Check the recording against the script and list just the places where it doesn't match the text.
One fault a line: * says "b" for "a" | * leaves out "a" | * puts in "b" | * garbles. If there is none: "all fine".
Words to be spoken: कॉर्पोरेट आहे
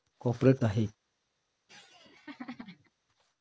all fine